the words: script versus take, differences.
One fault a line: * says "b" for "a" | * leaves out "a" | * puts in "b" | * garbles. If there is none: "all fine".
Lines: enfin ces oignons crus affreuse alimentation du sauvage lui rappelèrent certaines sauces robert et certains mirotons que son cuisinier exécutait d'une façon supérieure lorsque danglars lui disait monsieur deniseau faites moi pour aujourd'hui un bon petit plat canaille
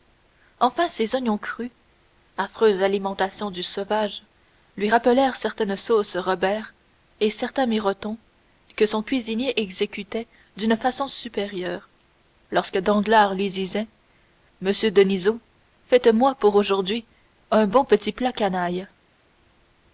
all fine